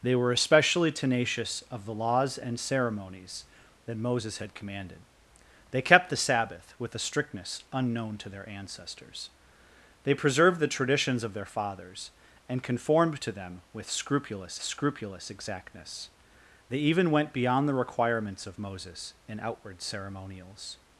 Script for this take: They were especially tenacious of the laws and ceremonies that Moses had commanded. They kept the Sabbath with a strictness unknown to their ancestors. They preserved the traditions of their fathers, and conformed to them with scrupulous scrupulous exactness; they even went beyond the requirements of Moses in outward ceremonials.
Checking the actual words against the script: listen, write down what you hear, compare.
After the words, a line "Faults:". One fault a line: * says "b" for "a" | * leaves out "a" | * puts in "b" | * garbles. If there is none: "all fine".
They were especially tenacious of the laws and ceremonies that Moses had commanded. They kept the Sabbath with a strictness unknown to their ancestors. They preserved the traditions of their fathers, and conformed to them with scrupulous scrupulous exactness; they even went beyond the requirements of Moses in outward ceremonials.
Faults:
all fine